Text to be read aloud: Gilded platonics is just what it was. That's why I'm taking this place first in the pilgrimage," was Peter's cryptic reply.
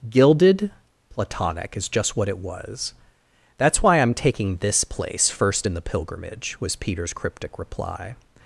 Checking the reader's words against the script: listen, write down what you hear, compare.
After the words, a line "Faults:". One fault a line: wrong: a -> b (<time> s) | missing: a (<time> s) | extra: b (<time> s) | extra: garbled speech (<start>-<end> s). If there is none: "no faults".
Gilded platonic is just what it was. That's why I'm taking this place first in the pilgrimage," was Peter's cryptic reply.
Faults:
wrong: platonics -> platonic (1.1 s)